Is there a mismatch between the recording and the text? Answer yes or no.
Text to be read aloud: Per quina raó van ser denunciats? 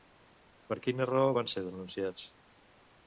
no